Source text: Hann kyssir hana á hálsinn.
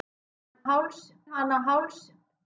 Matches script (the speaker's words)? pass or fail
fail